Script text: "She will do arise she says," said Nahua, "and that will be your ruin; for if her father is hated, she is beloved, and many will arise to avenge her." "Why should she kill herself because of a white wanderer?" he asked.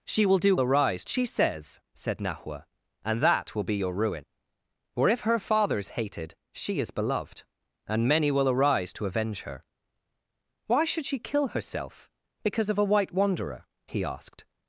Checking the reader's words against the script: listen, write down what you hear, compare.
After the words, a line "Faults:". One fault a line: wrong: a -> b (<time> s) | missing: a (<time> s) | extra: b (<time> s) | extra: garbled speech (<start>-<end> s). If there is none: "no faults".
"She will do arise she says," said Nahua, "and that will be your ruin; for if her father is hated, she is beloved, and many will arise to avenge her." "Why should she kill herself because of a white wanderer?" he asked.
Faults:
no faults